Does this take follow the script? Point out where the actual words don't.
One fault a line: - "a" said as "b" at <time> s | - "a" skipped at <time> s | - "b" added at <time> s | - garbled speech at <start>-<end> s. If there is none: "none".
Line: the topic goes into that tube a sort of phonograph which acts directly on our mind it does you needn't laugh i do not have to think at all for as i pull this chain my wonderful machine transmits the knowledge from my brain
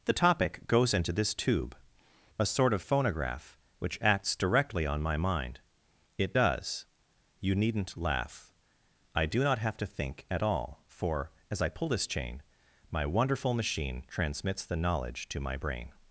- "that" said as "this" at 1.1 s
- "our" said as "my" at 5.0 s
- "from" said as "to" at 15.3 s